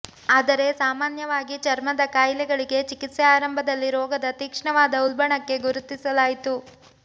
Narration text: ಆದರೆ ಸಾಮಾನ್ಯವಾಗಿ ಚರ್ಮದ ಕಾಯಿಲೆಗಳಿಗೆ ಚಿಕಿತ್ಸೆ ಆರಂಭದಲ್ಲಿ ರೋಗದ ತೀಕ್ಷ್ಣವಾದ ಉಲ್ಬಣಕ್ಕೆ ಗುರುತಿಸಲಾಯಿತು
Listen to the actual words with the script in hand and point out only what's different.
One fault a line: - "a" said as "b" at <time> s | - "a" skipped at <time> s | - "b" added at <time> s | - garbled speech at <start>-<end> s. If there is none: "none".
none